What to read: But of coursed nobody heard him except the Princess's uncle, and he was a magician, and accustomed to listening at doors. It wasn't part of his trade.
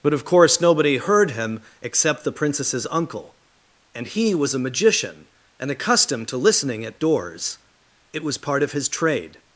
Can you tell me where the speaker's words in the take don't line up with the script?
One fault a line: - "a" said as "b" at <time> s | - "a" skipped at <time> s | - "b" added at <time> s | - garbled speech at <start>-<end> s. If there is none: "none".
- "coursed" said as "course" at 0.2 s
- "wasn't" said as "was" at 8.2 s